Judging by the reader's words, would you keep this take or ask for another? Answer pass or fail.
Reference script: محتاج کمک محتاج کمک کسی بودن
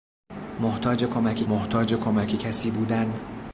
pass